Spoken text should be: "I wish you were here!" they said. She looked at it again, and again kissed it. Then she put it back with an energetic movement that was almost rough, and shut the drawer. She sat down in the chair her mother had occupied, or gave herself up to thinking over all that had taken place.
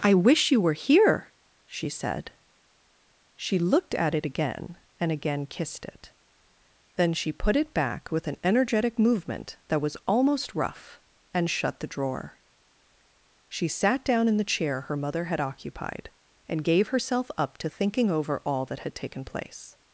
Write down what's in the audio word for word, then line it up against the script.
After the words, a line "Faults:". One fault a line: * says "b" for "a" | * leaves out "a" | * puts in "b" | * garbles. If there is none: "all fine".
"I wish you were here!" she said. She looked at it again, and again kissed it. Then she put it back with an energetic movement that was almost rough, and shut the drawer. She sat down in the chair her mother had occupied, and gave herself up to thinking over all that had taken place.
Faults:
* says "she" for "they"
* says "and" for "or"